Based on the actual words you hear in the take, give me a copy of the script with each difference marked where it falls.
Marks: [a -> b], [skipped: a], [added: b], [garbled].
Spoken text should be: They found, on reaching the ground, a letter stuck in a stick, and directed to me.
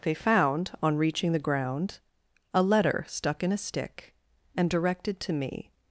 They found, on reaching the ground, a letter stuck in a stick, and directed to me.